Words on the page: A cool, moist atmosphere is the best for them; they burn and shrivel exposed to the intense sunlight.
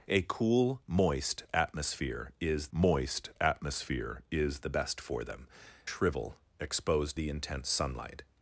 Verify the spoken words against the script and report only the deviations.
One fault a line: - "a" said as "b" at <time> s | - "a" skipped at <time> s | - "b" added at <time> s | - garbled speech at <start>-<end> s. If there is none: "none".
- "moist atmosphere is" added at 2.7 s
- "they burn and" skipped at 5.5 s
- "to" skipped at 7.2 s